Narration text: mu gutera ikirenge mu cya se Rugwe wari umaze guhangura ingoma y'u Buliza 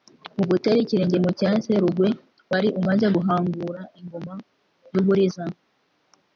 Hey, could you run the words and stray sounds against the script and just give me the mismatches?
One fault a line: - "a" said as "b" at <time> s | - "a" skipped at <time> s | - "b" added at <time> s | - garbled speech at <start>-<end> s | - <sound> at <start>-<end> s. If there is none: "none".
none